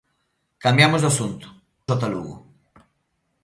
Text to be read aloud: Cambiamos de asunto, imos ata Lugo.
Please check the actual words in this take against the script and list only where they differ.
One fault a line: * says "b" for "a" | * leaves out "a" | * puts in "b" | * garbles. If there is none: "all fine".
* leaves out "imos"